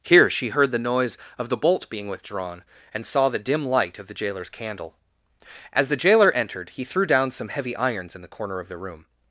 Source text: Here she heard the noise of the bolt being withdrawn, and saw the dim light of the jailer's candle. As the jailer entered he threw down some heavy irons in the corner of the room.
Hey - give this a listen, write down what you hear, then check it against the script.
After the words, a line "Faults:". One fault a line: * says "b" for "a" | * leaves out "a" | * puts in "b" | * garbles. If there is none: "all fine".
Here she heard the noise of the bolt being withdrawn, and saw the dim light of the jailer's candle. As the jailer entered he threw down some heavy irons in the corner of the room.
Faults:
all fine